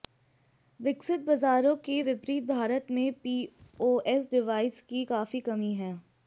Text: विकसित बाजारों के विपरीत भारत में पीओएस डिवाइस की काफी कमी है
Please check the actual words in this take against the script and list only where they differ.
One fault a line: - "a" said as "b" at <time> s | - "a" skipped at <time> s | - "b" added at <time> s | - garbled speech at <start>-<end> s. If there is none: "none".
none